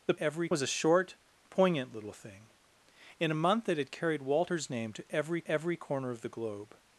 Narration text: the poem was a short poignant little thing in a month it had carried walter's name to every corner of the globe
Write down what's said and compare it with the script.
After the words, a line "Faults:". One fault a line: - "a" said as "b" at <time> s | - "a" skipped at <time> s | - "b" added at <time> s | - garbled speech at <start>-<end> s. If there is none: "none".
the every was a short poignant little thing in a month it had carried walter's name to every every corner of the globe
Faults:
- "poem" said as "every" at 0.2 s
- "every" added at 5.5 s